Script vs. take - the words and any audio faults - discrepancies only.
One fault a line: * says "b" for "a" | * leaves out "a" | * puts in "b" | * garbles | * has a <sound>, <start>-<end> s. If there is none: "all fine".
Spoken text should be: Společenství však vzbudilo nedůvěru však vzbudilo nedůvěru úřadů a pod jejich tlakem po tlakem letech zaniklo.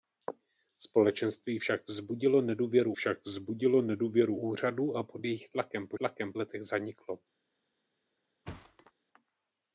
* has a thud, 8.5-8.9 s